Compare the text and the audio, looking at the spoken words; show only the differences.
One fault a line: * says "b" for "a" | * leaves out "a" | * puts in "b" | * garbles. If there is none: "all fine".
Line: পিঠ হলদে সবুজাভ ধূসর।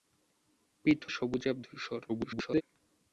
* leaves out "হলদে"
* garbles